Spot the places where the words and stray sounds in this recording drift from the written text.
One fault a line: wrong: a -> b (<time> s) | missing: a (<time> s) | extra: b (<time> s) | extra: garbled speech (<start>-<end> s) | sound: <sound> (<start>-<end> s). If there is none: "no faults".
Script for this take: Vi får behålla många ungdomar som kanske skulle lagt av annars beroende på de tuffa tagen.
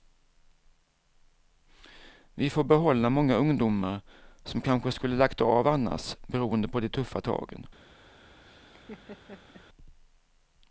sound: laugh (8.4-9.7 s)